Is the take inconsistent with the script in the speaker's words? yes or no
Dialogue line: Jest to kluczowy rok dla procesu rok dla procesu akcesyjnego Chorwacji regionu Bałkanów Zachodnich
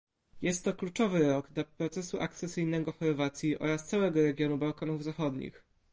yes